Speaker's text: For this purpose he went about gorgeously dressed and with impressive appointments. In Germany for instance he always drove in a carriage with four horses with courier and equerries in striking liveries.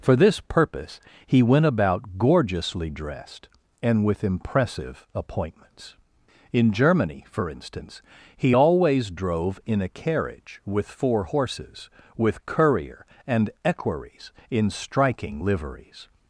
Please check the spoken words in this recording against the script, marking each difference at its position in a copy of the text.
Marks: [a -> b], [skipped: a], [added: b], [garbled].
For this purpose he went about gorgeously dressed and with impressive appointments. In Germany for instance he always drove in a carriage with four horses with courier and equerries in striking liveries.